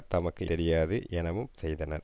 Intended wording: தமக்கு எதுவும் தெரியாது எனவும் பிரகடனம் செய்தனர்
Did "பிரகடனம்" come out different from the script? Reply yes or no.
yes